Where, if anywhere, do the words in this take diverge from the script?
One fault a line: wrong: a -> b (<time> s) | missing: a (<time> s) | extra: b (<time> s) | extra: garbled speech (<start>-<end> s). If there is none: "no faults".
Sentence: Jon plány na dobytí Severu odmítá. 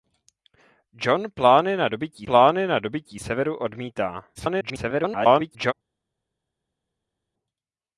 extra: plány na dobytí (2.2 s)
extra: garbled speech (4.3-5.7 s)